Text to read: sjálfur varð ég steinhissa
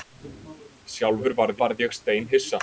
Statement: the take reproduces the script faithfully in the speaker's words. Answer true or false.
false